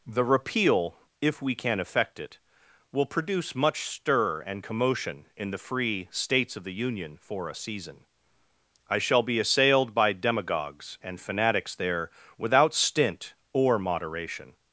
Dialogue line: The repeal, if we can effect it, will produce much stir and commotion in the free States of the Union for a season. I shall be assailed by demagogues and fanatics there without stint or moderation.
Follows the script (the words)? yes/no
yes